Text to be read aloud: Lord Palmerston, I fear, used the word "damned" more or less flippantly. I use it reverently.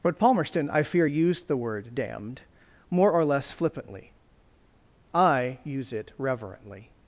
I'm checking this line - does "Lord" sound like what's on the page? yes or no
no